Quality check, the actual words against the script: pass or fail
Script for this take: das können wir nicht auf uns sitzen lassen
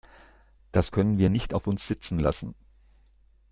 pass